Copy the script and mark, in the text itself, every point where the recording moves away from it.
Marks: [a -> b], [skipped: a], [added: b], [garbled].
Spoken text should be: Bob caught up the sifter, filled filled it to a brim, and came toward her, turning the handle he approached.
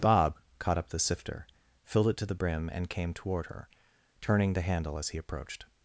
Bob caught up the sifter, filled [skipped: filled] it to [a -> the] brim, and came toward her, turning the handle [added: as] he approached.